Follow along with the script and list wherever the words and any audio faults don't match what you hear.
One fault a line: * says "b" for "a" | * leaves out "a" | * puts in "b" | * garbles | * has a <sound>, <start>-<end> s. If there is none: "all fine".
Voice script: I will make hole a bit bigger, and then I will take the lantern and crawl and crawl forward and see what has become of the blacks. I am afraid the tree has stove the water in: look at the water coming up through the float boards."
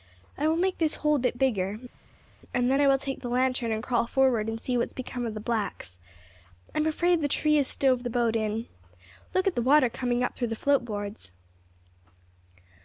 * puts in "this"
* leaves out "and crawl"
* says "boat" for "water"